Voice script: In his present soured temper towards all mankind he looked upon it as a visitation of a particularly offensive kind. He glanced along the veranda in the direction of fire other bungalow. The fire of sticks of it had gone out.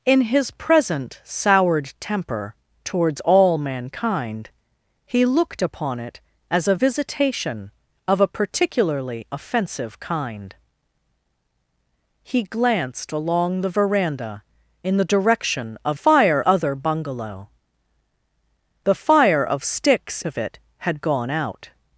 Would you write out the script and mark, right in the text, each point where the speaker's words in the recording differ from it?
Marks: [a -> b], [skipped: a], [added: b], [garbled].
In his present soured temper towards all mankind he looked upon it as a visitation of a particularly offensive kind. He glanced along the veranda in the direction of fire other bungalow. The fire of sticks of it had gone out.